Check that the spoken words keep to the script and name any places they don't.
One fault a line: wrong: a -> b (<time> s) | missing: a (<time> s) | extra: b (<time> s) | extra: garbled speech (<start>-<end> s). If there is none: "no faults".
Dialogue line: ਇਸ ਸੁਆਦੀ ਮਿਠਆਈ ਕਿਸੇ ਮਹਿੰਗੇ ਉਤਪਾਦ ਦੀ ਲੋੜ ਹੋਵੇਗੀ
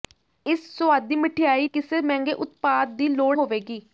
no faults